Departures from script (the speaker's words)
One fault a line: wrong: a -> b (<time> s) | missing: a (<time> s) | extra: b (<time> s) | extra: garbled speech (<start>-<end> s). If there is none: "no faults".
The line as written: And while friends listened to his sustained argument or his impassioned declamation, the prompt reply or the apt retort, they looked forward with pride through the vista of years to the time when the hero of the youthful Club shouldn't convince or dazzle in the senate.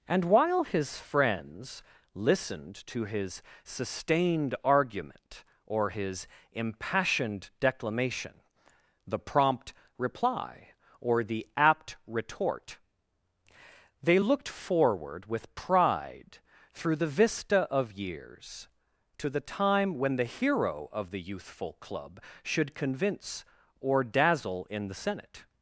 extra: his (0.6 s)
wrong: shouldn't -> should (22.4 s)